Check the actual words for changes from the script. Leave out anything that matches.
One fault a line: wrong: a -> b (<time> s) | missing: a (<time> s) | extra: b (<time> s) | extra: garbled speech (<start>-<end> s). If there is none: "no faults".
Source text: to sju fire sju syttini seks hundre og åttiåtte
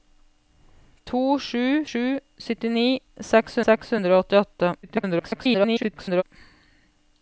missing: fire (1.6 s)
extra: seks (3.7 s)
extra: garbled speech (4.8-6.2 s)